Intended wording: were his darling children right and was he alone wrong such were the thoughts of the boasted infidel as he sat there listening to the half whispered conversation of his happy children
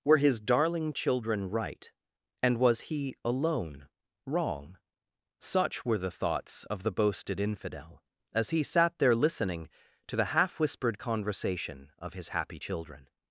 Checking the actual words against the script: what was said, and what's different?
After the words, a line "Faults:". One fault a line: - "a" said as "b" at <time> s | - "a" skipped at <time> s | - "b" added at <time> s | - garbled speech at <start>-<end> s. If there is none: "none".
were his darling children right and was he alone wrong such were the thoughts of the boasted infidel as he sat there listening to the half whispered conversation of his happy children
Faults:
none